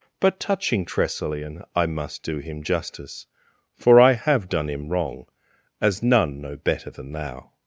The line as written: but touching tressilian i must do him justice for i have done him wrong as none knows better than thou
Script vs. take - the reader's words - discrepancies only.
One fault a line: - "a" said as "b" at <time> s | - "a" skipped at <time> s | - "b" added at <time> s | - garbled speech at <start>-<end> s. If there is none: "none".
- "knows" said as "know" at 6.4 s